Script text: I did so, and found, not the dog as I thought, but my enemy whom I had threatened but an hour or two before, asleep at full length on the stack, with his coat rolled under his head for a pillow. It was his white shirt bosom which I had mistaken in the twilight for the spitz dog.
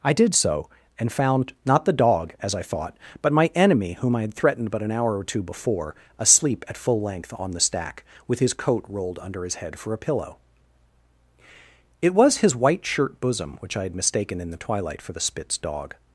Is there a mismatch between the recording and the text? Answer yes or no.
no